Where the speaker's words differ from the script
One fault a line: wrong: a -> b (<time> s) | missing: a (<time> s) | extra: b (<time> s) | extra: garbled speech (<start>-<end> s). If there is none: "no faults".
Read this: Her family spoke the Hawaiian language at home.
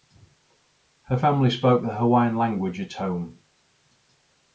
no faults